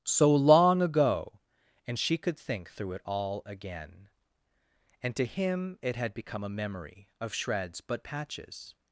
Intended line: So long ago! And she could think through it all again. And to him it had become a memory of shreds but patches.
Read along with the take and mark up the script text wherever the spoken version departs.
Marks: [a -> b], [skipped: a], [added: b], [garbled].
So long ago! And she could think through it all again. And to him it had become a memory of shreds but patches.